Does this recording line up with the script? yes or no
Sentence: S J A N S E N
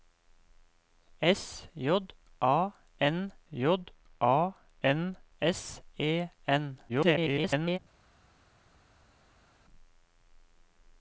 no